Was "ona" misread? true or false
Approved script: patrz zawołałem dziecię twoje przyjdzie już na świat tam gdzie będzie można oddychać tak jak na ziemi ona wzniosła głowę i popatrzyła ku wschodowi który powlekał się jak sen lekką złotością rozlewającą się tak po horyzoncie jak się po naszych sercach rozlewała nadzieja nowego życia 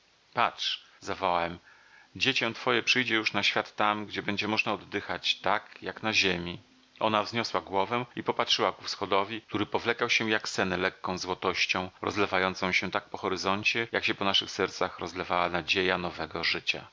false